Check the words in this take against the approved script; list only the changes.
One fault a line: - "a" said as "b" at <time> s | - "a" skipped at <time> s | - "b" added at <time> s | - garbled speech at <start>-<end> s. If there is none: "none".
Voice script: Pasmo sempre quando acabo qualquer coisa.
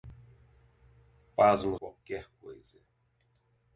- "sempre quando acabo" skipped at 1.8 s